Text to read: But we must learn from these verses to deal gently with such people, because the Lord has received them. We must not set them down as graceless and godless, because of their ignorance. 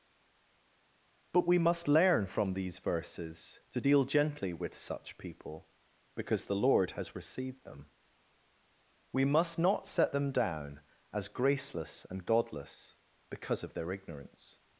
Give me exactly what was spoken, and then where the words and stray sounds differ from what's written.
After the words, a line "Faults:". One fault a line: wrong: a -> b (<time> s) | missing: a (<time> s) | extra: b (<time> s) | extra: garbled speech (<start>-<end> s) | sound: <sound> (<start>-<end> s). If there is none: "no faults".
But we must learn from these verses to deal gently with such people, because the Lord has received them. We must not set them down as graceless and godless, because of their ignorance.
Faults:
no faults